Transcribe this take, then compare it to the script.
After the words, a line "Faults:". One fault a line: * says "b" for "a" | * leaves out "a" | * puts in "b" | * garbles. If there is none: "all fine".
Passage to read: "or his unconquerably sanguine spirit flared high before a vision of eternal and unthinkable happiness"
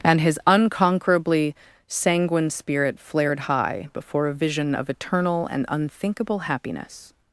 "and his unconquerably sanguine spirit flared high before a vision of eternal and unthinkable happiness"
Faults:
* says "and" for "or"